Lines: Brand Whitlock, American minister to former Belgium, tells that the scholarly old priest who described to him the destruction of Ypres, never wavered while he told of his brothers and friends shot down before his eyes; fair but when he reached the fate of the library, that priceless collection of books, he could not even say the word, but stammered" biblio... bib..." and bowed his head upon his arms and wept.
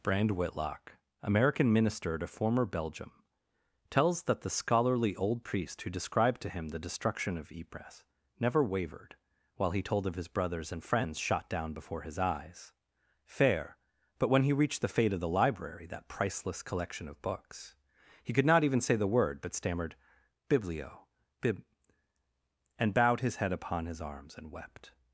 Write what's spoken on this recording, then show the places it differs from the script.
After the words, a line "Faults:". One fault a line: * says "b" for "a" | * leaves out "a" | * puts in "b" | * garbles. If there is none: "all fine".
Brand Whitlock, American minister to former Belgium, tells that the scholarly old priest who described to him the destruction of Ypres, never wavered while he told of his brothers and friends shot down before his eyes; fair but when he reached the fate of the library, that priceless collection of books, he could not even say the word, but stammered" biblio... bib..." and bowed his head upon his arms and wept.
Faults:
all fine